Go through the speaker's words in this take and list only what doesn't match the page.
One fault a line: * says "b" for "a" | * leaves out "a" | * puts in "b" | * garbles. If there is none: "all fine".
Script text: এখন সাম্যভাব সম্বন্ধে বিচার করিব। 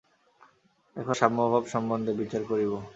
all fine